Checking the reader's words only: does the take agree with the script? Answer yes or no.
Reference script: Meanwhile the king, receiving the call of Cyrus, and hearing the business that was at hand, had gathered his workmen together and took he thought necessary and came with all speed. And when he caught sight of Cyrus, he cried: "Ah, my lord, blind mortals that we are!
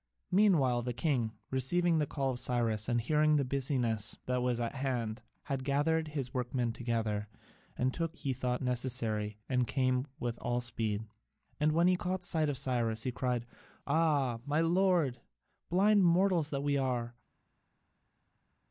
yes